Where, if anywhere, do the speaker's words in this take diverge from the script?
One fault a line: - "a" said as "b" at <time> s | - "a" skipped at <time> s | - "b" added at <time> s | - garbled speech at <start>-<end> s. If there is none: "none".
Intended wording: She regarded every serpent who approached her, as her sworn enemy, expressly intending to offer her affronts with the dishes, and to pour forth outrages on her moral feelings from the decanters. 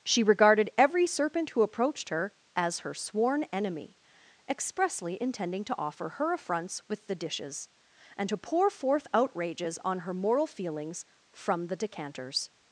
none